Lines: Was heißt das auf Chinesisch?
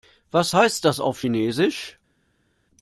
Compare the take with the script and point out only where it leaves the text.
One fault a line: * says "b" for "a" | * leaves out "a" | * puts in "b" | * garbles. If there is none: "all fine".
all fine